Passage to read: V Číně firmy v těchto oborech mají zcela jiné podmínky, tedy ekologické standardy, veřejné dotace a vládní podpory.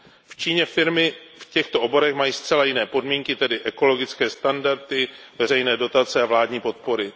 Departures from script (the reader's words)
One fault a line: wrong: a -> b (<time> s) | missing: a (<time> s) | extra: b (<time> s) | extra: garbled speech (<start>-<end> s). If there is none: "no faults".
no faults